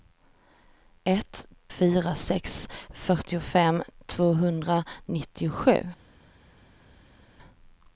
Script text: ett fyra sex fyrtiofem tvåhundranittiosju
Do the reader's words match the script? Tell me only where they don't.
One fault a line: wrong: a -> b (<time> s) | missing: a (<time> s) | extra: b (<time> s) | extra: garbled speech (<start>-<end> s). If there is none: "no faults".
no faults